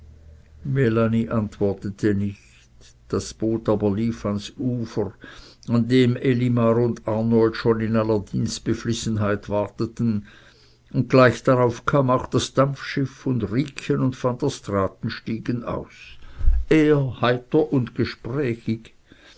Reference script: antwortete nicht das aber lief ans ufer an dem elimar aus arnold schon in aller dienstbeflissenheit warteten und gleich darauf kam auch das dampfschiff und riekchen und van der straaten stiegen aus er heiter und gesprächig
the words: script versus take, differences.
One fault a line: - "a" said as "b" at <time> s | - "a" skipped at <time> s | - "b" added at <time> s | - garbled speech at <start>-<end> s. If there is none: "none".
- "boot" added at 3.4 s
- "aus" said as "und" at 6.8 s